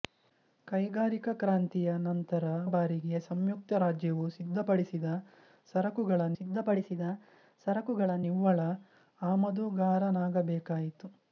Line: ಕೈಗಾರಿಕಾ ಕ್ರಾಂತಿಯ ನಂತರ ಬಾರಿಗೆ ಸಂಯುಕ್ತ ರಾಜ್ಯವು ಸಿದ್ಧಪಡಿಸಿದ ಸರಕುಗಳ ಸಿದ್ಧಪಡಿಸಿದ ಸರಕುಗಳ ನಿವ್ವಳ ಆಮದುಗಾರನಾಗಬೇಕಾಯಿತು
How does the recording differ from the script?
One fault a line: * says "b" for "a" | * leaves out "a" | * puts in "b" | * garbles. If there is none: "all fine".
all fine